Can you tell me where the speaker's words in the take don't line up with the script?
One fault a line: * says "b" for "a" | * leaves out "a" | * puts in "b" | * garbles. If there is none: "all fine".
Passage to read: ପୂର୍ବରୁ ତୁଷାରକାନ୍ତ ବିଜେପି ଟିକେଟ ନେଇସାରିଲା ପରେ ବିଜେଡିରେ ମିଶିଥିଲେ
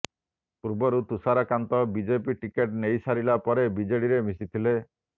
all fine